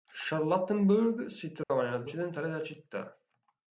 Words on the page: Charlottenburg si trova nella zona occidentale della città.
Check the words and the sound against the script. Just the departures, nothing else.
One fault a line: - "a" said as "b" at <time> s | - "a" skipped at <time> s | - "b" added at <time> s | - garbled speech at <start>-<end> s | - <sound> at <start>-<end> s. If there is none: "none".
- dropout at 1.6-1.7 s
- "zona" skipped at 2.1 s